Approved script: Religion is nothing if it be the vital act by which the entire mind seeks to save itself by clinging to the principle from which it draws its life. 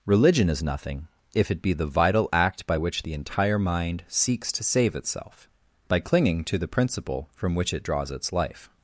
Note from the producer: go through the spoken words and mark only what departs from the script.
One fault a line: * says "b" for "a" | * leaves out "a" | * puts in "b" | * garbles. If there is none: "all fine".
all fine